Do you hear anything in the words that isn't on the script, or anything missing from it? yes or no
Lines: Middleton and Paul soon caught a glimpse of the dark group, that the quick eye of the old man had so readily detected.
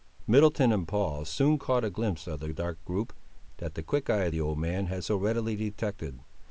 no